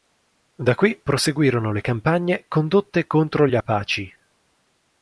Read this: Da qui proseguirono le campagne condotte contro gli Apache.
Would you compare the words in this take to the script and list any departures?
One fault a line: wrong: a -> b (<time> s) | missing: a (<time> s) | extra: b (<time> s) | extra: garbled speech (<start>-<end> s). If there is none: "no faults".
no faults